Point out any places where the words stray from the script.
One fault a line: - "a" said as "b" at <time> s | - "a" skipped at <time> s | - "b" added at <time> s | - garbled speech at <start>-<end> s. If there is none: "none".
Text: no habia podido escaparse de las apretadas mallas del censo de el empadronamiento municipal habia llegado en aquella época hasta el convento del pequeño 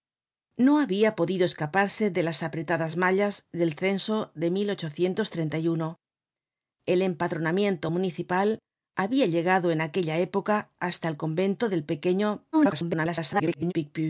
- garbled speech at 12.5-13.7 s